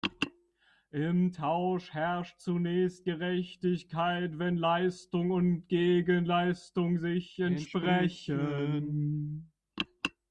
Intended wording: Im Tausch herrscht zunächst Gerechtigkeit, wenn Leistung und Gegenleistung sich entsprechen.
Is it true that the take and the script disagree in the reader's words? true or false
false